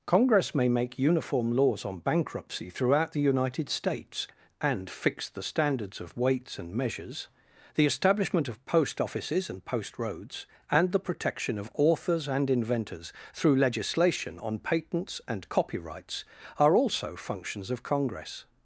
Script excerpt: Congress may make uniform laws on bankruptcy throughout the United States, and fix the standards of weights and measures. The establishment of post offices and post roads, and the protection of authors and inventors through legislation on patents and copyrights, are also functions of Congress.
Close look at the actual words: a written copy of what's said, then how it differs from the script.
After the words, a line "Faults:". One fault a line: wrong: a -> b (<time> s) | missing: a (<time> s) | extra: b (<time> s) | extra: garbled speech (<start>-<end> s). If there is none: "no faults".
Congress may make uniform laws on bankruptcy throughout the United States, and fix the standards of weights and measures. The establishment of post offices and post roads, and the protection of authors and inventors through legislation on patents and copyrights, are also functions of Congress.
Faults:
no faults